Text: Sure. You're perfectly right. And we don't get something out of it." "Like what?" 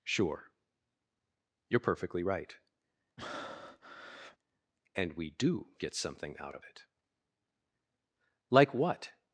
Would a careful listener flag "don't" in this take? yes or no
yes